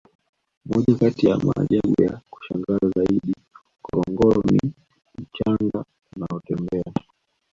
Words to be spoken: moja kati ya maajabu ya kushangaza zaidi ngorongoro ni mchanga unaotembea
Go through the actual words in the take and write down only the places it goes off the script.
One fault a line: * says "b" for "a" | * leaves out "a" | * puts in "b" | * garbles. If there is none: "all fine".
all fine